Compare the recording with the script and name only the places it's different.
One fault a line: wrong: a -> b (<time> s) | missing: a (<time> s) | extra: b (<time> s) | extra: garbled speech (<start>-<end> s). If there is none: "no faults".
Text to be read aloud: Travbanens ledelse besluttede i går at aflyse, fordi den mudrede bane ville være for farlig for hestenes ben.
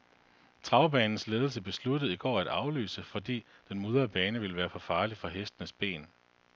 no faults